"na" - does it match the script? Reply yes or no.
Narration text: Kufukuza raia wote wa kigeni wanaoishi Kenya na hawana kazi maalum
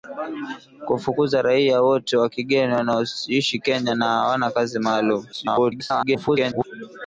yes